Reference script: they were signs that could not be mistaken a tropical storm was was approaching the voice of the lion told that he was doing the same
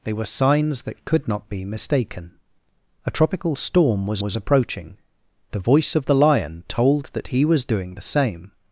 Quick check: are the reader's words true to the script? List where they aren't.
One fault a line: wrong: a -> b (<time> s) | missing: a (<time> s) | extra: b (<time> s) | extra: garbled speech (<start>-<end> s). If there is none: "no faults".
no faults